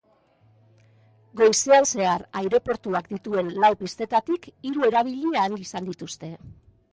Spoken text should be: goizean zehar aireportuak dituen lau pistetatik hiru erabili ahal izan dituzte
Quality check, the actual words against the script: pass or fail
pass